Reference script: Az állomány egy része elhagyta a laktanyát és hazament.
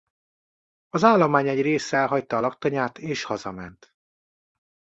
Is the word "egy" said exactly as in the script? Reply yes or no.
yes